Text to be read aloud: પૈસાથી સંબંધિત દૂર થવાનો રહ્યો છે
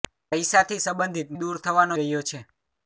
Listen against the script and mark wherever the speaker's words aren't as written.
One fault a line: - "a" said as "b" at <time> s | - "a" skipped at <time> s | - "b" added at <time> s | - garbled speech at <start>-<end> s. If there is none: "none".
none